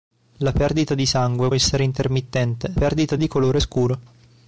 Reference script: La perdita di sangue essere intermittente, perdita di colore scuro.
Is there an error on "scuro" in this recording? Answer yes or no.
no